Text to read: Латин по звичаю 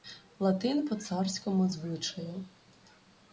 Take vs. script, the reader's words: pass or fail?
fail